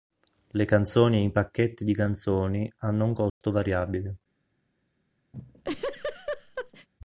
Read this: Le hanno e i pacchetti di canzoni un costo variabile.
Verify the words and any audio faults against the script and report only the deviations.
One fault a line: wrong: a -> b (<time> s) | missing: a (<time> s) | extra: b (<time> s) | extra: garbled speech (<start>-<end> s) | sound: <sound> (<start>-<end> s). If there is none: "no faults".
wrong: hanno -> canzoni (0.7 s)
extra: hanno (2.8 s)
sound: dropout (3.3-3.4 s)
sound: laugh (5.3-6.9 s)